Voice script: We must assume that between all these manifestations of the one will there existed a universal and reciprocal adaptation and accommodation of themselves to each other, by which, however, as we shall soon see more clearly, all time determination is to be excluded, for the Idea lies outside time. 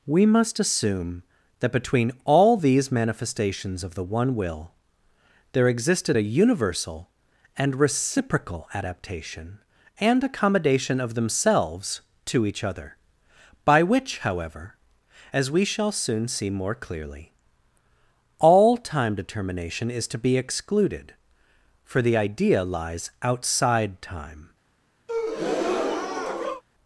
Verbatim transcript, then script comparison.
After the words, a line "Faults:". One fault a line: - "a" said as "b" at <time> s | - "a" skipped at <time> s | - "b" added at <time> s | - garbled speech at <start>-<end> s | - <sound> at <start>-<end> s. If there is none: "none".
We must assume that between all these manifestations of the one will there existed a universal and reciprocal adaptation and accommodation of themselves to each other, by which, however, as we shall soon see more clearly, all time determination is to be excluded, for the Idea lies outside time.
Faults:
- breath at 25.1-26.6 s